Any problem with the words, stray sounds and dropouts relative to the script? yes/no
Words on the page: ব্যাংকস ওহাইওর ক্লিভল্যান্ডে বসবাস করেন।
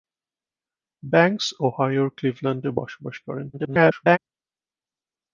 yes